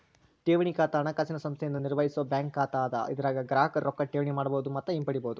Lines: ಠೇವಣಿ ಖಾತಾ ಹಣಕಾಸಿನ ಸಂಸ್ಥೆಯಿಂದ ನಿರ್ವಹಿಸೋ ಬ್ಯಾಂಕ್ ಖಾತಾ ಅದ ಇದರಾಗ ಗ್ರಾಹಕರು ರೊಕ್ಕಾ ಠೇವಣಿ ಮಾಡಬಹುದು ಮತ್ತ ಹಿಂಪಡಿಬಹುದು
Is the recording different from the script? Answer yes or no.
no